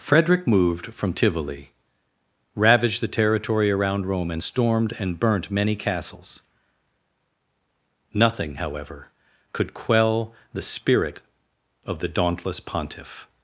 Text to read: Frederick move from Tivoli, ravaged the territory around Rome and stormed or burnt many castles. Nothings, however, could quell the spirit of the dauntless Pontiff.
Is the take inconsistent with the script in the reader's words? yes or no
yes